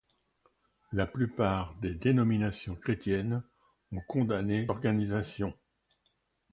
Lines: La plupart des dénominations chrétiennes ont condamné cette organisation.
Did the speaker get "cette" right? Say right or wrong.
wrong